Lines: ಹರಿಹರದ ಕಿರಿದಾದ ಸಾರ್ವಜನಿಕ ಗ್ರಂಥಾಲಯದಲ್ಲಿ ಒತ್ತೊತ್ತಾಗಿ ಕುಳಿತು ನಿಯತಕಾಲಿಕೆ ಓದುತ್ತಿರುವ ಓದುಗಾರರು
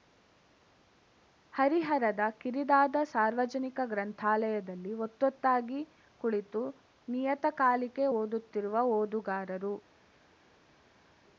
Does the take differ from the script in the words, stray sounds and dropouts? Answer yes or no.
no